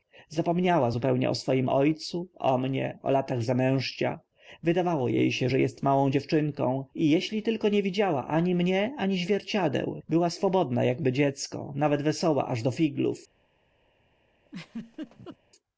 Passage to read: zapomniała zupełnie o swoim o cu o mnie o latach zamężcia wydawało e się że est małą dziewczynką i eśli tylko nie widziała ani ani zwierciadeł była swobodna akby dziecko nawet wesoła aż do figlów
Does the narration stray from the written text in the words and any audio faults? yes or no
yes